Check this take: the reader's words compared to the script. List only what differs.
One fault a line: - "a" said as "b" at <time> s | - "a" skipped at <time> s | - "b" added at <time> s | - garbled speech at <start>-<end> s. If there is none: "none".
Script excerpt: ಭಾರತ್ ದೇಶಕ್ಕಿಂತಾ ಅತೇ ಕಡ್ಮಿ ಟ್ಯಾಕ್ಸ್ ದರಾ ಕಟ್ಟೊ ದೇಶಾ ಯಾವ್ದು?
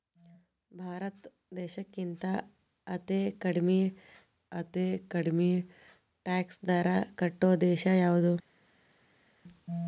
- "ಅತೇ ಕಡ್ಮಿ" added at 4.5 s